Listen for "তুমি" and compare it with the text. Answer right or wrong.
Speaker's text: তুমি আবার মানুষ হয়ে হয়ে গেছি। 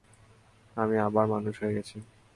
wrong